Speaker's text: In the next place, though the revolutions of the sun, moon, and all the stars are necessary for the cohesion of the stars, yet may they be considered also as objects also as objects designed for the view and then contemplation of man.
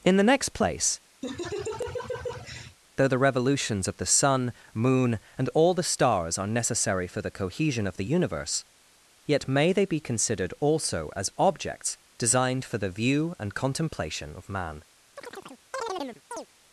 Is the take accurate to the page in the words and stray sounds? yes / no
no